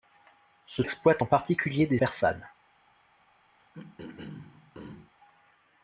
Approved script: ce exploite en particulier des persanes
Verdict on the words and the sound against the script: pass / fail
fail